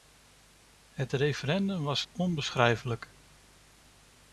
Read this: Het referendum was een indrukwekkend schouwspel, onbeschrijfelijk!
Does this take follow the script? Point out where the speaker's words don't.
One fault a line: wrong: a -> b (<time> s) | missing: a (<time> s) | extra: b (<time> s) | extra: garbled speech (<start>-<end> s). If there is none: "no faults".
missing: een indrukwekkend schouwspel (2.0 s)